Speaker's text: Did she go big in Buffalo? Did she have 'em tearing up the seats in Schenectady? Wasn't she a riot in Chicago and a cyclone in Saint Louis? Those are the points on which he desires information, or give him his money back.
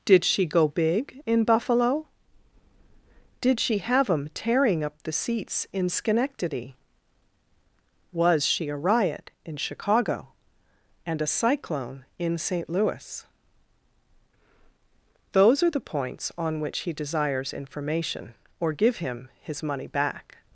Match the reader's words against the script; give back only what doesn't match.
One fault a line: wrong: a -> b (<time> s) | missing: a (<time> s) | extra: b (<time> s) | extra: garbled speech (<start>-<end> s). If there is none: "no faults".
wrong: Wasn't -> Was (8.1 s)